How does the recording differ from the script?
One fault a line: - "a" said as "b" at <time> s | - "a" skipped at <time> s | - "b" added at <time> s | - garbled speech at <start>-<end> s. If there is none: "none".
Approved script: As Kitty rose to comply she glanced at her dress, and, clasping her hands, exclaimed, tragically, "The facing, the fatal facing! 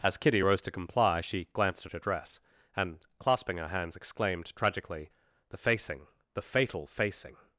none